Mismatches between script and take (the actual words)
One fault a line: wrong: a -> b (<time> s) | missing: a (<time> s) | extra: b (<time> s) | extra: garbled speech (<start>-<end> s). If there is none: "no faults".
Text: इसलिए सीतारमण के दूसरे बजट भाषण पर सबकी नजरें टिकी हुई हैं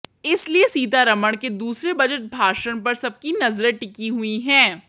no faults